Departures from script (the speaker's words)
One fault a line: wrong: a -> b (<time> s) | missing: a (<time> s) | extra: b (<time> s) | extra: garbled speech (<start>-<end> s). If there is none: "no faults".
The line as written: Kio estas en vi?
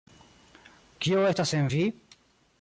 no faults